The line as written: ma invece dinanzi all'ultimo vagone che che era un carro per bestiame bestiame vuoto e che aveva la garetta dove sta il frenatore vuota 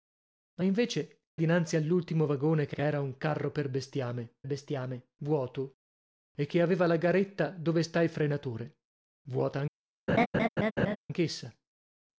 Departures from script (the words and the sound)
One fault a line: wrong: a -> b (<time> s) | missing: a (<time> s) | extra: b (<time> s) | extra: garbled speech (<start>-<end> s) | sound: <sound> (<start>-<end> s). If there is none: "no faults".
sound: laugh (10.1-11.0 s)